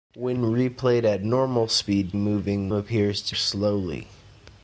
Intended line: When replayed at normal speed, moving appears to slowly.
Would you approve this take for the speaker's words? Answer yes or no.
yes